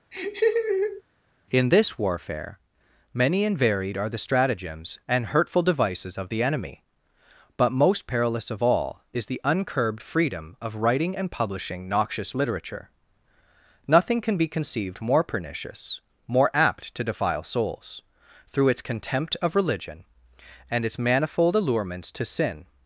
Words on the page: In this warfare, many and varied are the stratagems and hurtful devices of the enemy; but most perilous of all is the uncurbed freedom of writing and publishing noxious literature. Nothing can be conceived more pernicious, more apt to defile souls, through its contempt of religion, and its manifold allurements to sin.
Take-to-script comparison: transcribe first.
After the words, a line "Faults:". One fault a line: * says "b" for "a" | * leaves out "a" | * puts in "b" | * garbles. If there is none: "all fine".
In this warfare, many and varied are the stratagems and hurtful devices of the enemy; but most perilous of all is the uncurbed freedom of writing and publishing noxious literature. Nothing can be conceived more pernicious, more apt to defile souls, through its contempt of religion, and its manifold allurements to sin.
Faults:
all fine